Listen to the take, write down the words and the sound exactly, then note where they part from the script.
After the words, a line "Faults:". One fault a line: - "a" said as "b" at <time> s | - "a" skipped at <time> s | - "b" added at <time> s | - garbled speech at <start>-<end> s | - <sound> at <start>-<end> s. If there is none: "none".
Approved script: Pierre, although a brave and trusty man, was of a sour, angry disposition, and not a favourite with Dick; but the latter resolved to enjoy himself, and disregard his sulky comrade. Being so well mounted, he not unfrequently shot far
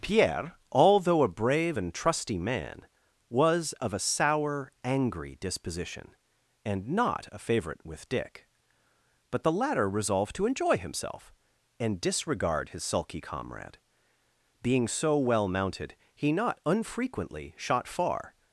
Pierre, although a brave and trusty man, was of a sour, angry disposition, and not a favourite with Dick; but the latter resolved to enjoy himself, and disregard his sulky comrade. Being so well mounted, he not unfrequently shot far
Faults:
none